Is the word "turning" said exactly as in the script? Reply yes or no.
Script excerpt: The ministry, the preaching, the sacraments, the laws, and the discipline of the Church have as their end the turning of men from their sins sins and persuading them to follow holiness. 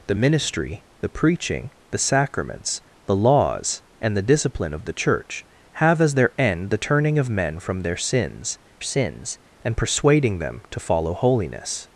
yes